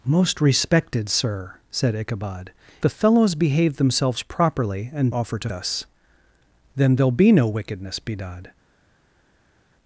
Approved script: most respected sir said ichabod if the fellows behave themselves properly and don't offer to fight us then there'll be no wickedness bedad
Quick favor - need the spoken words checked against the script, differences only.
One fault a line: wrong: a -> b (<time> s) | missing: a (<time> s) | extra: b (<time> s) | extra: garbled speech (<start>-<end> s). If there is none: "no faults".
missing: if (2.5 s)
missing: don't (5.1 s)
missing: fight (5.5 s)